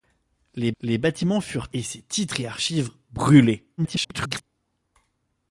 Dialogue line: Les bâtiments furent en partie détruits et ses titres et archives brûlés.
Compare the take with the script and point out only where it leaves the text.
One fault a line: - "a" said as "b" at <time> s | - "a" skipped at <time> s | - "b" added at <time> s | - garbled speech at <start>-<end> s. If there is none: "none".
- "les" added at 0.8 s
- "en partie détruits" skipped at 1.7 s
- garbled speech at 3.8-4.4 s